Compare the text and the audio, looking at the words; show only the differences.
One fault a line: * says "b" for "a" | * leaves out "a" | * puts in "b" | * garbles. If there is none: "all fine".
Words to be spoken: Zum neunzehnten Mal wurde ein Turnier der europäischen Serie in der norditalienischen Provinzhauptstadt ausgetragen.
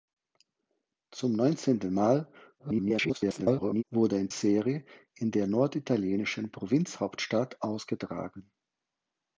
* garbles
* leaves out "Turnier der europäischen"